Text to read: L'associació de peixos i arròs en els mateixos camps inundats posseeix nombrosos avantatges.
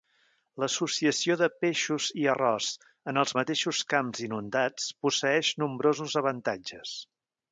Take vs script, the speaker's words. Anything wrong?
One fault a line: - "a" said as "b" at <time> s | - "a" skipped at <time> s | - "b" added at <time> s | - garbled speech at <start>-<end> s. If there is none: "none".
none